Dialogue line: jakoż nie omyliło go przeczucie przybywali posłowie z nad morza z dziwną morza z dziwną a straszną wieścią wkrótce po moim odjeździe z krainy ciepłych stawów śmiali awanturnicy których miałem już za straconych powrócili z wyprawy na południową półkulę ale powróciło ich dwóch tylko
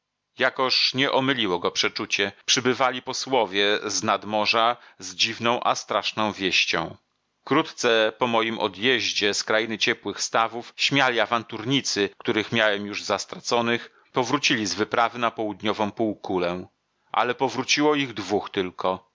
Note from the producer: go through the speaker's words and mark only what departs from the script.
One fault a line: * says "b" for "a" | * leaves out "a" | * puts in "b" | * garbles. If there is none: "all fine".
* leaves out "morza z dziwną"